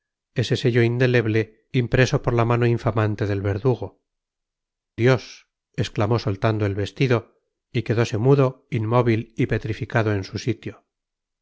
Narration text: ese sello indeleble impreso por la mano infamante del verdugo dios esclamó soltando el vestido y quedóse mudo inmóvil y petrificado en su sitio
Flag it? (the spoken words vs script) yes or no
no